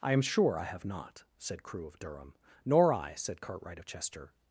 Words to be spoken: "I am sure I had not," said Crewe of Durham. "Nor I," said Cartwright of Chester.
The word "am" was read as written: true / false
true